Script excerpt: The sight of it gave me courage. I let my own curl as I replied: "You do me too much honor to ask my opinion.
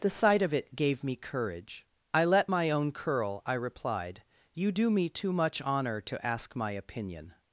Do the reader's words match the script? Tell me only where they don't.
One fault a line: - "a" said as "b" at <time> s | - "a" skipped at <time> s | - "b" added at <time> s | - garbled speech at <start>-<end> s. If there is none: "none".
- "as" skipped at 3.4 s